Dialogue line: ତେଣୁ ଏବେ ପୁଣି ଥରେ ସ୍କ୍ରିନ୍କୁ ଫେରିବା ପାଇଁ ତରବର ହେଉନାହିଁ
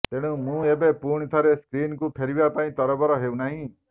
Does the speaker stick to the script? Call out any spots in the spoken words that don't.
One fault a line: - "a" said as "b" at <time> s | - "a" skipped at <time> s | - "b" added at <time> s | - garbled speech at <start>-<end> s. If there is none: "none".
- "ମୁଁ" added at 0.4 s